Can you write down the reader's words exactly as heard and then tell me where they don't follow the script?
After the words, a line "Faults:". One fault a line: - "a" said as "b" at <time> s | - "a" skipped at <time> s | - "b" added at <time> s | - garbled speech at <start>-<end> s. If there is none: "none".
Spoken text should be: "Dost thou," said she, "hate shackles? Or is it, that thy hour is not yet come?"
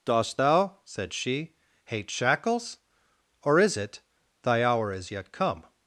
"Dost thou," said she, "hate shackles? Or is it, thy hour is yet come?"
Faults:
- "that" skipped at 4.0 s
- "not" skipped at 5.1 s